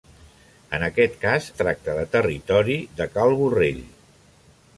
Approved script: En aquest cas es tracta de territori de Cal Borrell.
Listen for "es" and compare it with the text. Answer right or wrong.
wrong